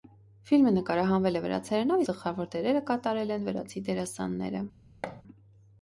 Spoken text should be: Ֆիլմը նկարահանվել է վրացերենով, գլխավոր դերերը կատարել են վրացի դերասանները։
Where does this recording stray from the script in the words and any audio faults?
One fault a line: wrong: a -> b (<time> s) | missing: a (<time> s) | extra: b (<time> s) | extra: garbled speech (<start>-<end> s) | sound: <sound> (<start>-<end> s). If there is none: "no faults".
sound: thud (5.0-5.2 s)